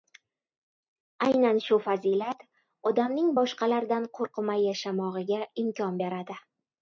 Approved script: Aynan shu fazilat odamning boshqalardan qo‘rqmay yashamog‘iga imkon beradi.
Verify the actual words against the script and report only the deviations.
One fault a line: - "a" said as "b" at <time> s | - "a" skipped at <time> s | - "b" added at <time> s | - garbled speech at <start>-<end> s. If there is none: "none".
none